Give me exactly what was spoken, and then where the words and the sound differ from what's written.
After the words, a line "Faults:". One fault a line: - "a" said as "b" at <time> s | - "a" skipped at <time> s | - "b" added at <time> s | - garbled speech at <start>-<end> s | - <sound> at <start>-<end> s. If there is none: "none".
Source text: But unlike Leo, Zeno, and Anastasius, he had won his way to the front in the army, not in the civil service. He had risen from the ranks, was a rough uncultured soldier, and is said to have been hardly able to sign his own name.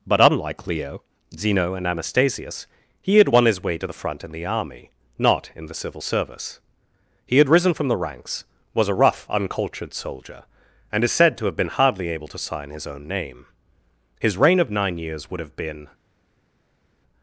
But unlike Leo, Zeno, and Anastasius, he had won his way to the front in the army, not in the civil service. He had risen from the ranks, was a rough uncultured soldier, and is said to have been hardly able to sign his own name. His reign of nine years would have been
Faults:
- "His reign of nine years would have been" added at 14.2 s